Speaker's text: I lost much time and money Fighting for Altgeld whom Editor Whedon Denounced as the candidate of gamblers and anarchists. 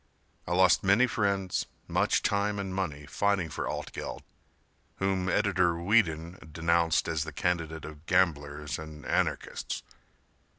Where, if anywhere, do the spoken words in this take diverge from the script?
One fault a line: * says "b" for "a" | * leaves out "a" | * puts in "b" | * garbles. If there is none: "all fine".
* puts in "many friends"